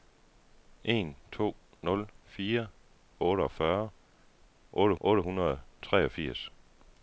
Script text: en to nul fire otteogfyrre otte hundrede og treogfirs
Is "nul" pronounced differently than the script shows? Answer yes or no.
no